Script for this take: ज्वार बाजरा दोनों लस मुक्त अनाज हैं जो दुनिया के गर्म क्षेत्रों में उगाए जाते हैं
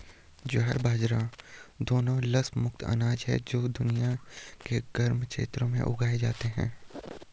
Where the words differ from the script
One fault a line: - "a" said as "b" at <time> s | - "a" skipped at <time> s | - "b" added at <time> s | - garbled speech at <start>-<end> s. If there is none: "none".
none